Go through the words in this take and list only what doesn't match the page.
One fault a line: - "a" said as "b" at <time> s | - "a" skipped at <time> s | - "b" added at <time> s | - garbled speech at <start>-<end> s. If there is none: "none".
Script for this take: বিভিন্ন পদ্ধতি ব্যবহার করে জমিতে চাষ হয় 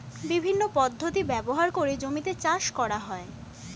- "করা" added at 2.8 s